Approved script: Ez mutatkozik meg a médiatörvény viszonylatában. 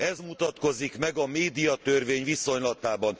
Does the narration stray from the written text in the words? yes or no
no